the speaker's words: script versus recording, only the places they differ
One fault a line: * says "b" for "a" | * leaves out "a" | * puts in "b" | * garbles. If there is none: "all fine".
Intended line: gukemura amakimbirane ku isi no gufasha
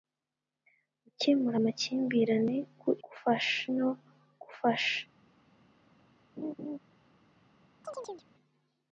* says "gufasha" for "isi"